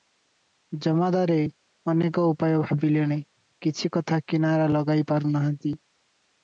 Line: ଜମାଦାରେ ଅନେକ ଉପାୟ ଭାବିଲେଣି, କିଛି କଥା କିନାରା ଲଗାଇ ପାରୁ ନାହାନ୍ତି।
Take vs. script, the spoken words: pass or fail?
pass